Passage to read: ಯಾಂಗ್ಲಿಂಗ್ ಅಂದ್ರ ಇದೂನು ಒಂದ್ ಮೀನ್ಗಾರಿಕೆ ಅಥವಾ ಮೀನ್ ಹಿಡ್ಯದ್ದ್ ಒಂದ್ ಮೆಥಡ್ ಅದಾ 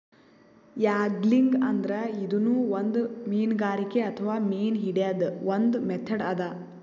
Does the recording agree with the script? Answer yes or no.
yes